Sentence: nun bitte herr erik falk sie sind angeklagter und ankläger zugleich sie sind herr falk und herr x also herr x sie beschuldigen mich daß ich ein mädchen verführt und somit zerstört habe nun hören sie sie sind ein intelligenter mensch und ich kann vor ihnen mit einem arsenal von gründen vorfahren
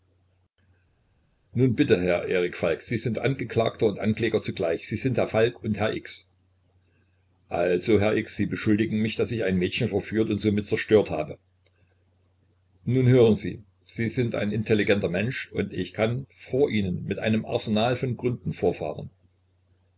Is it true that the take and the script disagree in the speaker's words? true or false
false